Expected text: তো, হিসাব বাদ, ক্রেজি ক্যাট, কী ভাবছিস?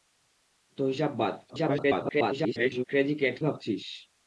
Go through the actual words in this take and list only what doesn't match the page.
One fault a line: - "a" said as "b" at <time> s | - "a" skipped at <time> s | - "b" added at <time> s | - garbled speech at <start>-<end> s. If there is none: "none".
- garbled speech at 1.5-2.8 s
- "কী" skipped at 3.4 s